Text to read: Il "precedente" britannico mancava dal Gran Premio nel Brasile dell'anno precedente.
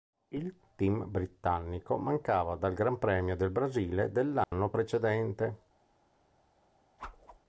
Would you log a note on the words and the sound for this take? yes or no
yes